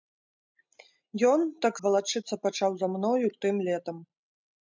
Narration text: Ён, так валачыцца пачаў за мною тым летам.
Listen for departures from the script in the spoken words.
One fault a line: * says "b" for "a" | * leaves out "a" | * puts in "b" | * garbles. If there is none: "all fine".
all fine